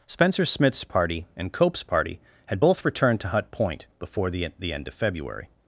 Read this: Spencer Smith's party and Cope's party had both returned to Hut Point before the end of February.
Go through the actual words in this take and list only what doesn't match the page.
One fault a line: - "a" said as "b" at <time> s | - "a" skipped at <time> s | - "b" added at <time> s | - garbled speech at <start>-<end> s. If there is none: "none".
- "the" added at 4.6 s